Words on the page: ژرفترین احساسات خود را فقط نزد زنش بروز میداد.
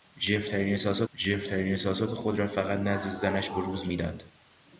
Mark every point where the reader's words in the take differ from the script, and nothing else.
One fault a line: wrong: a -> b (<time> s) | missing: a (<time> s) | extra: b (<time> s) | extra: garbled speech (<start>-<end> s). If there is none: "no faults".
extra: ژرفترین احساسات (1.1 s)